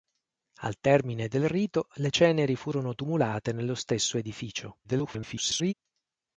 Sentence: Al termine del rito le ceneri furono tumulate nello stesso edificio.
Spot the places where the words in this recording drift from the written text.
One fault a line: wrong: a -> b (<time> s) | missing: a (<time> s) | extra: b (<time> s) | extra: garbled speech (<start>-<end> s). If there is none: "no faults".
extra: garbled speech (4.8-5.7 s)